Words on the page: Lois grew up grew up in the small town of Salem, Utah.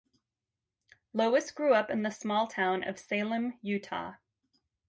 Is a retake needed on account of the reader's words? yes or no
yes